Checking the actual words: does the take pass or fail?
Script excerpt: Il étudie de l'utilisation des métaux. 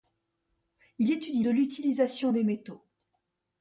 pass